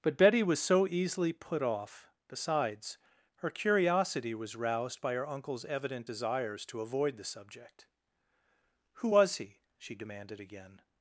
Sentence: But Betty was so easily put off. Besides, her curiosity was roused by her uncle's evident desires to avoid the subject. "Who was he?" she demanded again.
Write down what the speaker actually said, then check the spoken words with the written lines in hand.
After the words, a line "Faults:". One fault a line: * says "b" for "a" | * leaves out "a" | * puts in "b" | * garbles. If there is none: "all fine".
But Betty was so easily put off. Besides, her curiosity was roused by her uncle's evident desires to avoid the subject. "Who was he?" she demanded again.
Faults:
all fine